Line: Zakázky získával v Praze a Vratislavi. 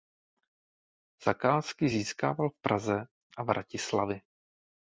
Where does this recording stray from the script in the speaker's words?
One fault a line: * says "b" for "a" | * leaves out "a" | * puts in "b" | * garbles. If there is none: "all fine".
all fine